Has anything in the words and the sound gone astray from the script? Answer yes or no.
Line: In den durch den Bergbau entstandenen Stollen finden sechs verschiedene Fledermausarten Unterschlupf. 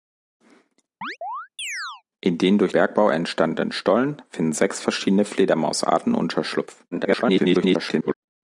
yes